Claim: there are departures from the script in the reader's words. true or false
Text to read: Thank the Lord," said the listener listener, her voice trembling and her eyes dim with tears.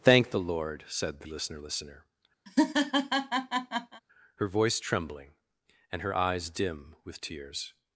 false